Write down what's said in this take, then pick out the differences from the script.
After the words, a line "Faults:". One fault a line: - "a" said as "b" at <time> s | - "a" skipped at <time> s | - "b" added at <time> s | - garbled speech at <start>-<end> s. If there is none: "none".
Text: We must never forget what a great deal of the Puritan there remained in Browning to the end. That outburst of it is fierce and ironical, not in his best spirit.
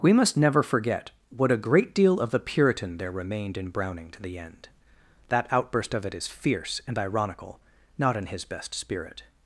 We must never forget what a great deal of the Puritan there remained in Browning to the end. That outburst of it is fierce and ironical, not in his best spirit.
Faults:
none